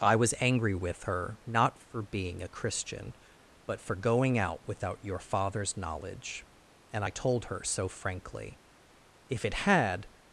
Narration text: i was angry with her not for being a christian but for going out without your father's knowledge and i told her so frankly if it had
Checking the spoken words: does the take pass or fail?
pass